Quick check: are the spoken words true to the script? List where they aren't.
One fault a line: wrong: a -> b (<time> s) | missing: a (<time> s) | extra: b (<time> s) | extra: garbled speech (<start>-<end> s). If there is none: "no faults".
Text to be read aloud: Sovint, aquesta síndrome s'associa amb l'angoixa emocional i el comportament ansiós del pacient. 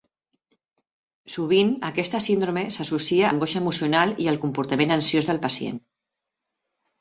missing: amb (3.3 s)